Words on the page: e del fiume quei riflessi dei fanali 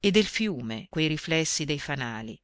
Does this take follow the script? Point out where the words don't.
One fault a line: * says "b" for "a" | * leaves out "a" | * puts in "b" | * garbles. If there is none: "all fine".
all fine